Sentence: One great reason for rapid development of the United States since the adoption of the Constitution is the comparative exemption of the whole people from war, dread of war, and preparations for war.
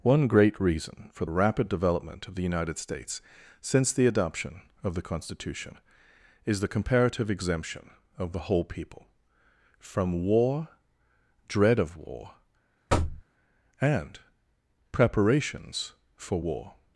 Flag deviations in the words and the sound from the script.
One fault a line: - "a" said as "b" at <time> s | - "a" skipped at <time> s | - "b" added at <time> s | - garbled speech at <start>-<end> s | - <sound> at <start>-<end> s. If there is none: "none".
- thud at 12.9-13.2 s